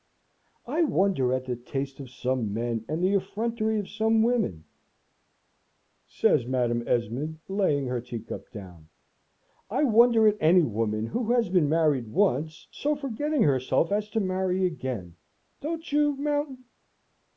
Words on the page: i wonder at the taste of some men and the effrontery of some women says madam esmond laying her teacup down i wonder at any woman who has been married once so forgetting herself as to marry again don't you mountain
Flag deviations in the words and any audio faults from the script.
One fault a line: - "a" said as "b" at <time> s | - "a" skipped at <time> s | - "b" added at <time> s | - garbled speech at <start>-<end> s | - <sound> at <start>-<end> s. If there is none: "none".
none